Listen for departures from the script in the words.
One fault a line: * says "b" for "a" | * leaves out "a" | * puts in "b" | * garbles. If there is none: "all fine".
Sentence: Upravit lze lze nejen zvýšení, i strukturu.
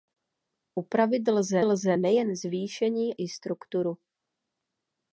all fine